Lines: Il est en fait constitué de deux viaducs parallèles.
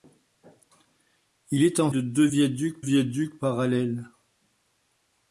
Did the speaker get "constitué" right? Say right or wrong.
wrong